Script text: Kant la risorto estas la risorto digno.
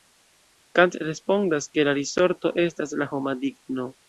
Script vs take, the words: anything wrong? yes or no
yes